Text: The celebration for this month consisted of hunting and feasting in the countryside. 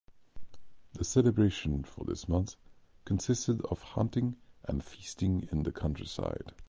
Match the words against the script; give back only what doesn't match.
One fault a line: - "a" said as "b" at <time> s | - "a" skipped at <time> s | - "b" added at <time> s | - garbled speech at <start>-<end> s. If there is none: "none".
none